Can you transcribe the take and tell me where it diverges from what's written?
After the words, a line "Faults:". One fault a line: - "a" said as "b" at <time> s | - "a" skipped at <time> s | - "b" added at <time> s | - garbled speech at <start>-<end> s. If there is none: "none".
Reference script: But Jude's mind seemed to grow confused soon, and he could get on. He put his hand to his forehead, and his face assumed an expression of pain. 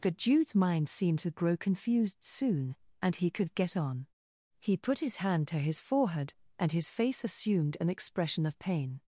But Jude's mind seemed to grow confused soon, and he could get on. He put his hand to his forehead, and his face assumed an expression of pain.
Faults:
none